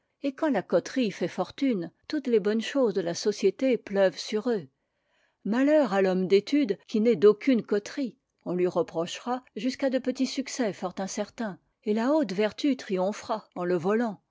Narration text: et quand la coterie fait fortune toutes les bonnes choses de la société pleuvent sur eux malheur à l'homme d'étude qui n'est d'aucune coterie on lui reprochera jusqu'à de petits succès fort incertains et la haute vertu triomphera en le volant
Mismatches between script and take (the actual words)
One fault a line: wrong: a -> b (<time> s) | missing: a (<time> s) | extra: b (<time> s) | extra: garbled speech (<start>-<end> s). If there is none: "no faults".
no faults